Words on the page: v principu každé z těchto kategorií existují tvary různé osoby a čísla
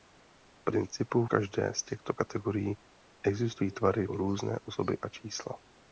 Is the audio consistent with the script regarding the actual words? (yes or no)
yes